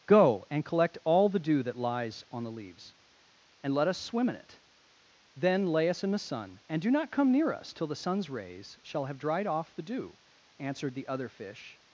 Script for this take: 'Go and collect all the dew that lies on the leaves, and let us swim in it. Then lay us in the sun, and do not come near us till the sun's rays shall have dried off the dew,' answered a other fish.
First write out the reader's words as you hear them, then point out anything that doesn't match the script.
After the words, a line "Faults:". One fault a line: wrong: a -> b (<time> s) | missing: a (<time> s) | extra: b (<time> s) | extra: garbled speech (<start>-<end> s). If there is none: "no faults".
'Go and collect all the dew that lies on the leaves, and let us swim in it. Then lay us in the sun, and do not come near us till the sun's rays shall have dried off the dew,' answered the other fish.
Faults:
wrong: a -> the (10.9 s)